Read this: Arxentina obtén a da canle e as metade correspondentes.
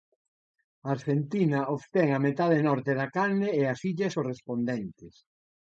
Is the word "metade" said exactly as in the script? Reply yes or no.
no